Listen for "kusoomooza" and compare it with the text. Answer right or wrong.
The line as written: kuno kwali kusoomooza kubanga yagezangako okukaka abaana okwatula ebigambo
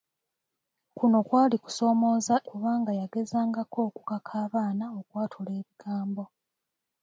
right